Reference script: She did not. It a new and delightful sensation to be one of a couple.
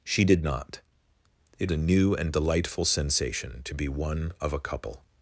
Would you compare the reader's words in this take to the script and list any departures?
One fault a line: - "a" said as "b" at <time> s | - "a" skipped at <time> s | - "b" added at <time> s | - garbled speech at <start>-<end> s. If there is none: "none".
none